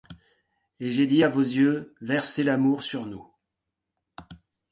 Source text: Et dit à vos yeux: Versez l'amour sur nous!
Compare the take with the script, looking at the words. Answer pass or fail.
fail